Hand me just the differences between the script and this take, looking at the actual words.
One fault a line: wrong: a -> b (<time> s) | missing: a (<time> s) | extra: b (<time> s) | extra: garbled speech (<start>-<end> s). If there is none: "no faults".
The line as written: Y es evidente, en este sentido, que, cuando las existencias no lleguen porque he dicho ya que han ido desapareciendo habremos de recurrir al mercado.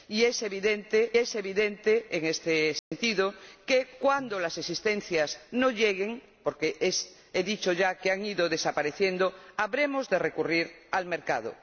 extra: es evidente (1.2 s)